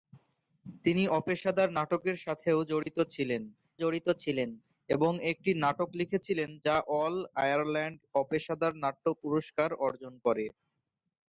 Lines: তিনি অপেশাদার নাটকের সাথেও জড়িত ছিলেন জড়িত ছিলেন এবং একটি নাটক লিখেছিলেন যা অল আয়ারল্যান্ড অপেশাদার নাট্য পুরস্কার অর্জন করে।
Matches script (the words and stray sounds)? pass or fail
fail